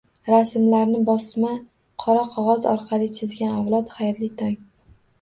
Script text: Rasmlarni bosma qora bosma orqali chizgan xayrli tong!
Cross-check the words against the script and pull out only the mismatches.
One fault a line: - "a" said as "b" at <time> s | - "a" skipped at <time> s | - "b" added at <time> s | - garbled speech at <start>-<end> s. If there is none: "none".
- "bosma" said as "qog'oz" at 2.3 s
- "avlod" added at 3.6 s